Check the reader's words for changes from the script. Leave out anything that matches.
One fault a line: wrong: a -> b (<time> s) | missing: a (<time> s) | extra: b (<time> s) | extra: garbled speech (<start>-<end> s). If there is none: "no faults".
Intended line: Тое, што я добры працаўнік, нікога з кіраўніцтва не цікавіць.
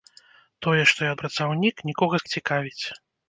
missing: добры (1.1 s)
missing: кіраўніцтва (2.3 s)